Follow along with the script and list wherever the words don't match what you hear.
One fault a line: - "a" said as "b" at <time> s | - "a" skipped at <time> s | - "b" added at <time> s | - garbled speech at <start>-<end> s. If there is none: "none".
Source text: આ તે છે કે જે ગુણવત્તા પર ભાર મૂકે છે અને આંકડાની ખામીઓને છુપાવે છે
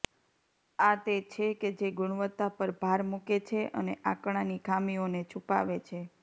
none